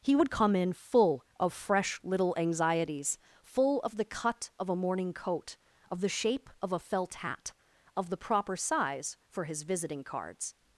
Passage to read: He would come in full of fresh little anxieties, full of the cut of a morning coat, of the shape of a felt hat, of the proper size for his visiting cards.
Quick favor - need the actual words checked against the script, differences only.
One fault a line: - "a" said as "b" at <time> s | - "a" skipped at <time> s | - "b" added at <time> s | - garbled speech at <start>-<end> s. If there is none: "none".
none